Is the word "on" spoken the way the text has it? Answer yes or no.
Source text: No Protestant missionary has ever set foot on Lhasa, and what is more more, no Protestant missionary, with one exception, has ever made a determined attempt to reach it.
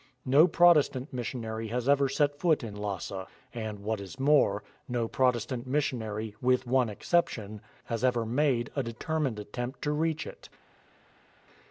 no